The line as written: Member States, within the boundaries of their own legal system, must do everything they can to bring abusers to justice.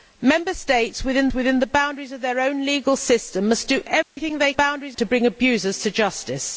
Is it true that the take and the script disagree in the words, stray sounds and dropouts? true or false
true